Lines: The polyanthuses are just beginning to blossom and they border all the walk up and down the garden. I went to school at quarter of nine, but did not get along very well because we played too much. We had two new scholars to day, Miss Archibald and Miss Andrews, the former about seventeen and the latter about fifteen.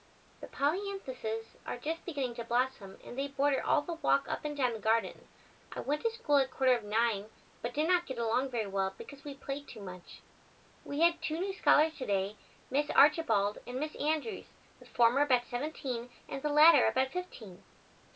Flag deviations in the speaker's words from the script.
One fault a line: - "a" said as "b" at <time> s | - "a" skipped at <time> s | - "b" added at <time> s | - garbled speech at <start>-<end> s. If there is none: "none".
none